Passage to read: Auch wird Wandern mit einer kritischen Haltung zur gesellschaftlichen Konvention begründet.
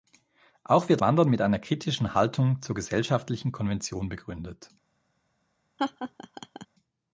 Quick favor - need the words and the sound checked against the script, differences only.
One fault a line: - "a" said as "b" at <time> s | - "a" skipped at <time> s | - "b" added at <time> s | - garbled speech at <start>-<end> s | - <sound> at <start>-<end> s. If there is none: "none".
- laugh at 5.8-6.7 s